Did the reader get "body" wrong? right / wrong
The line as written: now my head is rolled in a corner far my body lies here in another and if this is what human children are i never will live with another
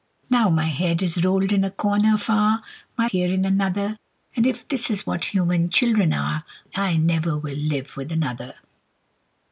wrong